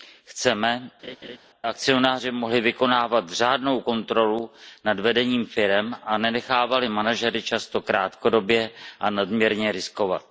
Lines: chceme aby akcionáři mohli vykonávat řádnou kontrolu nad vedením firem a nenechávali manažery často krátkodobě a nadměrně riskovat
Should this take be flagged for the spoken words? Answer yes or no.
yes